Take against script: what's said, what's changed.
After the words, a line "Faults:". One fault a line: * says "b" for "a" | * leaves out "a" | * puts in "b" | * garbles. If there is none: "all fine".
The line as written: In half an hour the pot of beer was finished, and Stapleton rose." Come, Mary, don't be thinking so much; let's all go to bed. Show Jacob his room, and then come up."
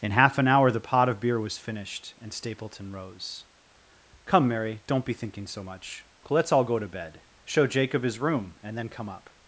In half an hour the pot of beer was finished, and Stapleton rose." Come, Mary, don't be thinking so much; let's all go to bed. Show Jacob his room, and then come up."
Faults:
all fine